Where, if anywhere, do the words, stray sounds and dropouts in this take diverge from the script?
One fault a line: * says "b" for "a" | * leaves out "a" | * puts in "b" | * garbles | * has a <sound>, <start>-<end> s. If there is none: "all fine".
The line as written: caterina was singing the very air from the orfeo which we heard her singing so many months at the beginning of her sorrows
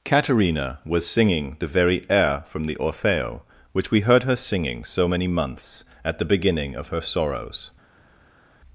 all fine